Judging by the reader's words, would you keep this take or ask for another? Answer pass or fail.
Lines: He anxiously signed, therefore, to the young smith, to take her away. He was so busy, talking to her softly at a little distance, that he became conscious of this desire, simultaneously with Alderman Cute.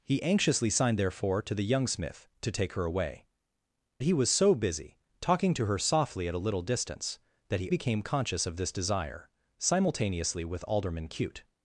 pass